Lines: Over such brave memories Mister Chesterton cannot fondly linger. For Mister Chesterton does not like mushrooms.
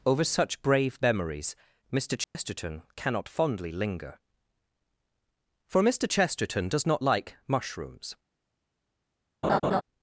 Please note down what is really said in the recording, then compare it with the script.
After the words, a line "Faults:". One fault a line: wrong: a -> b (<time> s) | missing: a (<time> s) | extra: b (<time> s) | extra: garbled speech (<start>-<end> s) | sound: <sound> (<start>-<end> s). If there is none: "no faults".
Over such brave memories Mister Chesterton cannot fondly linger. For Mister Chesterton does not like mushrooms.
Faults:
sound: dropout (2.2-2.3 s)
sound: laugh (9.4-9.8 s)